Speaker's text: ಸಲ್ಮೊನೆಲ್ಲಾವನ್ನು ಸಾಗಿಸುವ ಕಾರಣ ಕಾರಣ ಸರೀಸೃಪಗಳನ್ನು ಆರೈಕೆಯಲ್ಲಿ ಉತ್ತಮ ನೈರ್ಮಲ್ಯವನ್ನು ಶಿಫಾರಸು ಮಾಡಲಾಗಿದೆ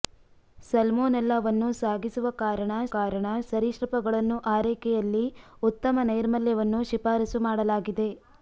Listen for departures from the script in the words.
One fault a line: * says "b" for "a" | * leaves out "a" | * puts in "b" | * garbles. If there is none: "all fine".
all fine